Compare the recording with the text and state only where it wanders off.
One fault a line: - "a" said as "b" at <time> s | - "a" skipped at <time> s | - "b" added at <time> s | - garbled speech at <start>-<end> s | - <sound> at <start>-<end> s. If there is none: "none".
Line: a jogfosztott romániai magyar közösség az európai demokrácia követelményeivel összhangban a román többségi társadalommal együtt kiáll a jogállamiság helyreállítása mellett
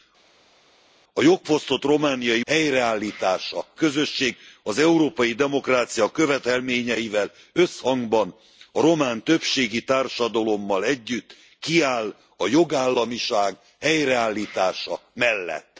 - "magyar" said as "helyreállítása" at 2.5 s